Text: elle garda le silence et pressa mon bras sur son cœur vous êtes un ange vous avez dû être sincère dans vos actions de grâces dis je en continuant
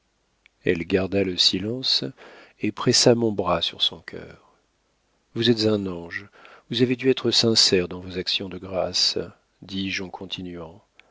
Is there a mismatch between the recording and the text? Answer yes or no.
no